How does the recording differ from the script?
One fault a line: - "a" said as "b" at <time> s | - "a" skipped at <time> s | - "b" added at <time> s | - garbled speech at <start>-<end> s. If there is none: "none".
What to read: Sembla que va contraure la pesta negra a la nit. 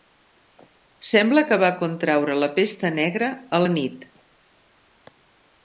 none